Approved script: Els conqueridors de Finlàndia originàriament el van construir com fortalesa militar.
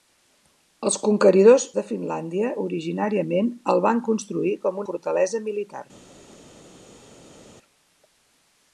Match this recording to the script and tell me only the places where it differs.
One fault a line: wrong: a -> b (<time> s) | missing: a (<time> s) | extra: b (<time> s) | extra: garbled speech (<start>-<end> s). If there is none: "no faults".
no faults